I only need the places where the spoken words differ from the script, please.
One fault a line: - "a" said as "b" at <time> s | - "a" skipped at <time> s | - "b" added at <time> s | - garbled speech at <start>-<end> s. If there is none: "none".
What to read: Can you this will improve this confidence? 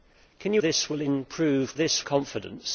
none